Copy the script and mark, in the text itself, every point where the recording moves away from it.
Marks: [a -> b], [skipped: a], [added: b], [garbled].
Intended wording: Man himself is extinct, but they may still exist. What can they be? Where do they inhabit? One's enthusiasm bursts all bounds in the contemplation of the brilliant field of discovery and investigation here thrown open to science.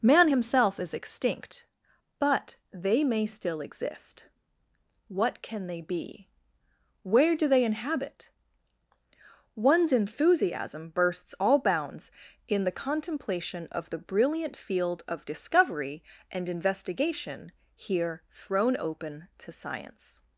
Man himself is extinct, but they may still exist. What can they be? Where do they inhabit? One's enthusiasm bursts all bounds in the contemplation of the brilliant field of discovery and investigation here thrown open to science.